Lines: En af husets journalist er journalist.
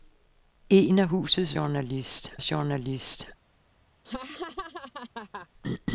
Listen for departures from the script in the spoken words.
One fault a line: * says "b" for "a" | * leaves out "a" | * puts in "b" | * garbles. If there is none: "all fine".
all fine